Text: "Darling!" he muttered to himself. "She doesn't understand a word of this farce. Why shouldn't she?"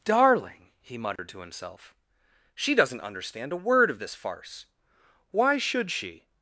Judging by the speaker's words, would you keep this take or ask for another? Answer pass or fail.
fail